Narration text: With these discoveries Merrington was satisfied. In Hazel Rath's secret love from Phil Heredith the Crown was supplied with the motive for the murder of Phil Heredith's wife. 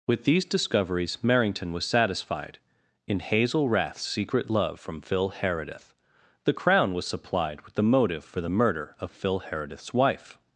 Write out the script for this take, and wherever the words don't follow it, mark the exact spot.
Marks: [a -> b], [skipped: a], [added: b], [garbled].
With these discoveries Merrington was satisfied. In Hazel Rath's secret love from Phil Heredith the Crown was supplied with the motive for the murder of Phil Heredith's wife.